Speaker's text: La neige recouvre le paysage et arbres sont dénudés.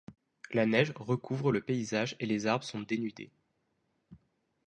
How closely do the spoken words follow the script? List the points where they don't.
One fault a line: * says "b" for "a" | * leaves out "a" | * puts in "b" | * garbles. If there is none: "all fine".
* puts in "les"